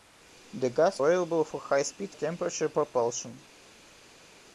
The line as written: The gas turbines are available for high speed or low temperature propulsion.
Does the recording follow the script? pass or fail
fail